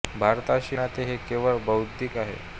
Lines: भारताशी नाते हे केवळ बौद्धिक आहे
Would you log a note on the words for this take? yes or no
no